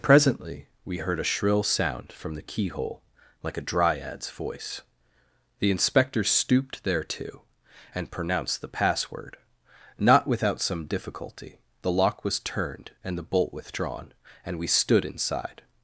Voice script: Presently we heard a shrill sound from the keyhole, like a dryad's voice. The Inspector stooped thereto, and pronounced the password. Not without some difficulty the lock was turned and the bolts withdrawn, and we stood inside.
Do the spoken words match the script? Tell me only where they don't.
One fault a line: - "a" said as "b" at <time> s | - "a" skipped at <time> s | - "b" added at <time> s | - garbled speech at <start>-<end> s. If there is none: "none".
- "bolts" said as "bolt" at 13.2 s